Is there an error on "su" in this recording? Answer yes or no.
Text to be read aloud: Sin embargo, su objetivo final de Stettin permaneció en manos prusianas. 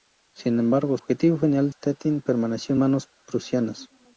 yes